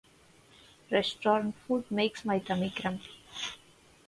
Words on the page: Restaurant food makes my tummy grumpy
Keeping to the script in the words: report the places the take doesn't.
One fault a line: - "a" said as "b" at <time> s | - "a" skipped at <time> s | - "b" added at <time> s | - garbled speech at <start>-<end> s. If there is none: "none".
none